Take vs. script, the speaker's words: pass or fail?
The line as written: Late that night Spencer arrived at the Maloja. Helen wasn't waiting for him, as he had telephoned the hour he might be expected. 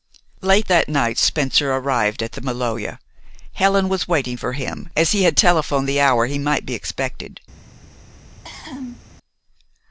fail